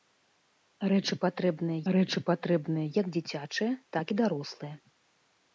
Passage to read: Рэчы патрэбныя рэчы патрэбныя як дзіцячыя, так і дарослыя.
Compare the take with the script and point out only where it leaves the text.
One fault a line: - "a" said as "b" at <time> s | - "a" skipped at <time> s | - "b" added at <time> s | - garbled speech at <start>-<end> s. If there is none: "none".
none